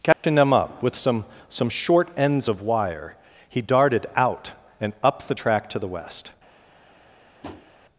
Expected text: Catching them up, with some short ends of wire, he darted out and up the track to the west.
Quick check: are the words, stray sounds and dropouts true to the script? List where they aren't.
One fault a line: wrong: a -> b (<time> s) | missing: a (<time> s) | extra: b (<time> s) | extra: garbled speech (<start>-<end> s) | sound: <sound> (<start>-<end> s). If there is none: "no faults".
sound: dropout (0.1-0.2 s)
extra: some (1.5 s)
sound: tap (7.4-7.7 s)